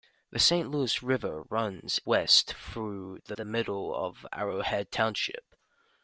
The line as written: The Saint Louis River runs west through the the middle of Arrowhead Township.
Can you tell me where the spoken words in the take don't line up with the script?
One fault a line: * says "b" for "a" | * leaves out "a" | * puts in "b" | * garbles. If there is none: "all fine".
all fine